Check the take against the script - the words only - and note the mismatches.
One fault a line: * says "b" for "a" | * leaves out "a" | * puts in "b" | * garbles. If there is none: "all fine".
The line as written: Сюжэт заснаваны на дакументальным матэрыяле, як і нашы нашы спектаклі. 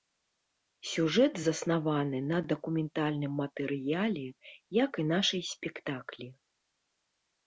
* leaves out "нашы"